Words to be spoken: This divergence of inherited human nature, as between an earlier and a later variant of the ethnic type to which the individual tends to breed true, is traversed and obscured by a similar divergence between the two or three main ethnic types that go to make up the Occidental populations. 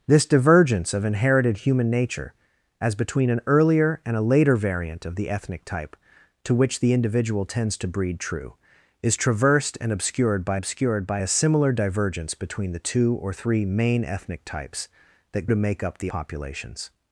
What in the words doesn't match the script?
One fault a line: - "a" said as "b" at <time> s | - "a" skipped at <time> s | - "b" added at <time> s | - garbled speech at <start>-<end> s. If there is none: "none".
- "obscured by" added at 10.5 s
- "go" skipped at 15.5 s
- "Occidental" skipped at 16.1 s